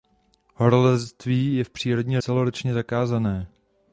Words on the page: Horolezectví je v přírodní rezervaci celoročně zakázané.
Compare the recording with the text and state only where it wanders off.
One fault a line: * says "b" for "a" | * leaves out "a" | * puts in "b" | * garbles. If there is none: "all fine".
* leaves out "rezervaci"